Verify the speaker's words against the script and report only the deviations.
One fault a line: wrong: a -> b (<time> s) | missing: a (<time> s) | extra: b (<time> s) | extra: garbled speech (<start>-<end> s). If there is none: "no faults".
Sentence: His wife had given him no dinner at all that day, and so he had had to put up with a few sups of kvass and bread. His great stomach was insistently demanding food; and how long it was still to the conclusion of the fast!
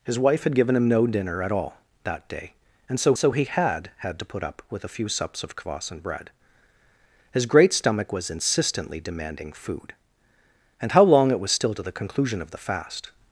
extra: so (3.2 s)